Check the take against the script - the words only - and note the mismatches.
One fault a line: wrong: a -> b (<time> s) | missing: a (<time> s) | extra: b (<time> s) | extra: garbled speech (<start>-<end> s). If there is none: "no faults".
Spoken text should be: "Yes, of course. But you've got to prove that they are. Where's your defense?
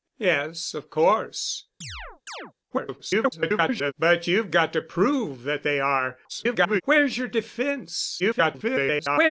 extra: garbled speech (2.7-3.9 s)
extra: garbled speech (6.3-6.8 s)
extra: garbled speech (8.2-9.3 s)